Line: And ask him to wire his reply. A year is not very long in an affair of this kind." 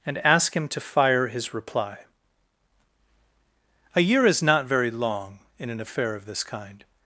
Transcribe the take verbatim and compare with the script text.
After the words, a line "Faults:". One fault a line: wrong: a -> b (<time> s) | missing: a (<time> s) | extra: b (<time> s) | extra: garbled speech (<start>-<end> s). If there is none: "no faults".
And ask him to fire his reply. A year is not very long in an affair of this kind."
Faults:
wrong: wire -> fire (0.8 s)